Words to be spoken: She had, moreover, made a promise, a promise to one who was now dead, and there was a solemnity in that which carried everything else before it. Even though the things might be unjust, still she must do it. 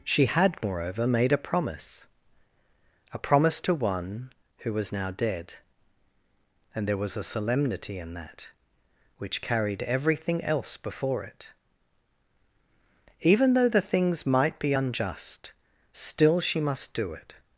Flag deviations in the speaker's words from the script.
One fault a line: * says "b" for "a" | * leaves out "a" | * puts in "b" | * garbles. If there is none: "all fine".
all fine